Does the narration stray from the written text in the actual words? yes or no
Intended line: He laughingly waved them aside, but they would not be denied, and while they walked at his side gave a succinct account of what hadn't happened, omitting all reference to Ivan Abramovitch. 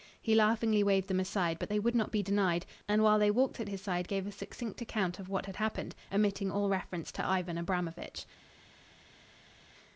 yes